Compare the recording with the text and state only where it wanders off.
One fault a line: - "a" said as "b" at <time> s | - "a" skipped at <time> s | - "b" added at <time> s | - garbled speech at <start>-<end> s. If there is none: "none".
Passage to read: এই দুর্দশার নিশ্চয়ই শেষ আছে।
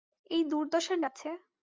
- "নিশ্চয়ই শেষ" skipped at 1.0 s